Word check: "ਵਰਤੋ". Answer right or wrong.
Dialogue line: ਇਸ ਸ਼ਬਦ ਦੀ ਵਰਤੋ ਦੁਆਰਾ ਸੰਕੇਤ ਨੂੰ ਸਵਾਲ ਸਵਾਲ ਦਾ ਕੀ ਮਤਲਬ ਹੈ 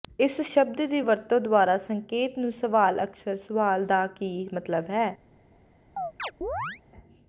right